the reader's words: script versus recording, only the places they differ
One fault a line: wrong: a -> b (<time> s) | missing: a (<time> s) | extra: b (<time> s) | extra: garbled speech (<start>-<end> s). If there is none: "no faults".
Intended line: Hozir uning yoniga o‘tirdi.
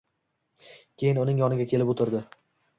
wrong: Hozir -> Keyin (1.0 s)
extra: kelib (1.8 s)